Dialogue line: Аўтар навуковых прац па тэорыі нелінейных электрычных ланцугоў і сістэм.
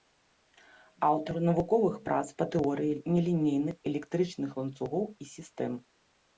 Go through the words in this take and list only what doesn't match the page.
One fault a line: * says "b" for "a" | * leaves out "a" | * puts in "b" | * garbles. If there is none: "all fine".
all fine